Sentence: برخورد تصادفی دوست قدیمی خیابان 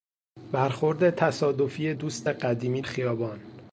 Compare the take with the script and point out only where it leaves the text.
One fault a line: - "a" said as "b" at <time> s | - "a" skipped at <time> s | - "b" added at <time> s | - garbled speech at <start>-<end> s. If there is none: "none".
none